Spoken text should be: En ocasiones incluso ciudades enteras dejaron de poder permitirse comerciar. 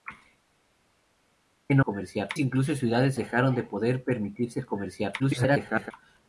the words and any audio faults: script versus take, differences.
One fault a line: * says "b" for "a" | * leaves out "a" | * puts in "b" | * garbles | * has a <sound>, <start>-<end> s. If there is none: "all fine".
* says "comerciar" for "ocasiones"
* leaves out "enteras"
* garbles